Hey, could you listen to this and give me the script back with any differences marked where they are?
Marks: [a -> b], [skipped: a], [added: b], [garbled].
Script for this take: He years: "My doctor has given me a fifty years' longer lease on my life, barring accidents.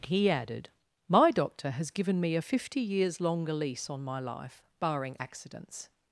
He [years: -> added] "My doctor has given me a fifty years' longer lease on my life, barring accidents.